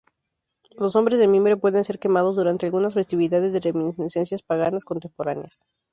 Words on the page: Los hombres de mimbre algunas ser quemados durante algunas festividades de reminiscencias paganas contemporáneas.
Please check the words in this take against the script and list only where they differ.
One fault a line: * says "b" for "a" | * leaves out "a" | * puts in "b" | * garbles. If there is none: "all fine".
* says "pueden" for "algunas"